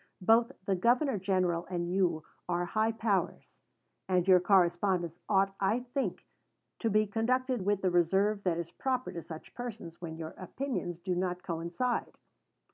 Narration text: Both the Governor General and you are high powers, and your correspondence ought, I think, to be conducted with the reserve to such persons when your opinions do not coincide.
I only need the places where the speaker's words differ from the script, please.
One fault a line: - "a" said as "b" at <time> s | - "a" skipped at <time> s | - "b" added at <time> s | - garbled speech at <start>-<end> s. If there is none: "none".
- "that is proper" added at 8.4 s